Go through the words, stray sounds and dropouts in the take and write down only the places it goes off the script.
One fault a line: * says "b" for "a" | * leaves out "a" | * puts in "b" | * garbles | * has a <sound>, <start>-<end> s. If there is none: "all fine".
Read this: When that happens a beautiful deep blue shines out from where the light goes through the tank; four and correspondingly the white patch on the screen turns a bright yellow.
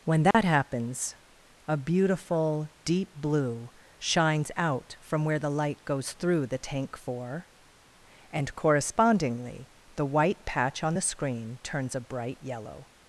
* has a dropout, 0.3-0.3 s